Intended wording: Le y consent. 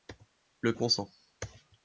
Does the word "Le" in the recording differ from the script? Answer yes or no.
no